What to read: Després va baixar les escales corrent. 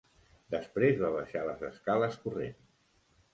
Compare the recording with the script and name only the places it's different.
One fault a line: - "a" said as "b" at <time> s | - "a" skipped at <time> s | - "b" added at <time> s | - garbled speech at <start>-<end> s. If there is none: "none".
none